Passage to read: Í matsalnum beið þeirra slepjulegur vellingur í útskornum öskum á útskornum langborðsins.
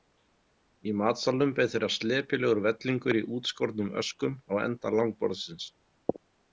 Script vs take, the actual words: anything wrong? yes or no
yes